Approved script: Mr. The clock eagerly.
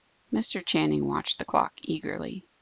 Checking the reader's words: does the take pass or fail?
fail